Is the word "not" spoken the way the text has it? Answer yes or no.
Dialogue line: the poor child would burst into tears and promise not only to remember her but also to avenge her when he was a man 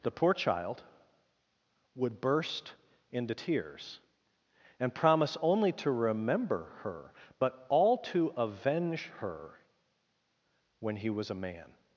no